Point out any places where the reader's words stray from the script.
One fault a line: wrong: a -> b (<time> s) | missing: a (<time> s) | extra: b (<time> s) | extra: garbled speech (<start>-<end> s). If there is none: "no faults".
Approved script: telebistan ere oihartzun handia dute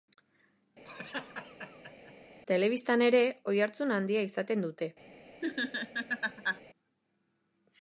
extra: izaten (4.3 s)